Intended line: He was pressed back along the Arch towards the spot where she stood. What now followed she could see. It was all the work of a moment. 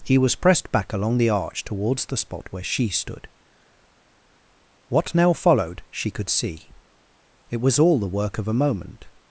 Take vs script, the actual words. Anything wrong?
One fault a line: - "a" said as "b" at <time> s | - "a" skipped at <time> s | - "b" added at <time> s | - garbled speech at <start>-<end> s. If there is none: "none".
none